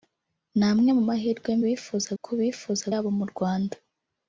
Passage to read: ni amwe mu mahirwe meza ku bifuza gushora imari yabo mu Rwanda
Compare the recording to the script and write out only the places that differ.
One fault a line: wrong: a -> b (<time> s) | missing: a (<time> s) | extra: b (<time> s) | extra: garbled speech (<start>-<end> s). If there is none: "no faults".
wrong: meza -> bifuza (1.6 s)
missing: gushora imari (2.8 s)